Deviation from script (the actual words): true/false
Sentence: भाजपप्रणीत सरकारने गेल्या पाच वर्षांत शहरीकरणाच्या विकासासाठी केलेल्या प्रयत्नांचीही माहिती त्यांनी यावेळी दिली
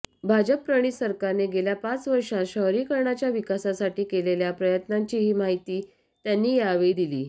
false